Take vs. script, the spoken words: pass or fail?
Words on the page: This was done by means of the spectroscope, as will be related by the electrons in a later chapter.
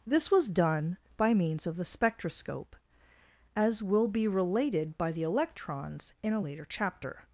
pass